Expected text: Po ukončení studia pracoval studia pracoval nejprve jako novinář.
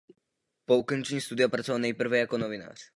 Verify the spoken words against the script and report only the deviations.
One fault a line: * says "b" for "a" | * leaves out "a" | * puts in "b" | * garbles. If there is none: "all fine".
* leaves out "studia pracoval"